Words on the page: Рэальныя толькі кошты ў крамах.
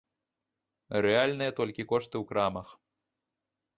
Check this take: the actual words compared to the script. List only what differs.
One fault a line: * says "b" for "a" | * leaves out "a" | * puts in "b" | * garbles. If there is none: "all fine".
all fine